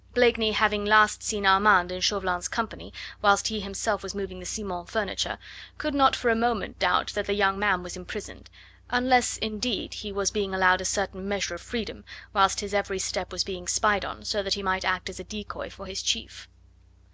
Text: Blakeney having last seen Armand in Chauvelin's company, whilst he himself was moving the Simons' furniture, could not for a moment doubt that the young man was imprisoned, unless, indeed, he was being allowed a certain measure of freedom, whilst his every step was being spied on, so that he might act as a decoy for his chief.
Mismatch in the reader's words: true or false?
false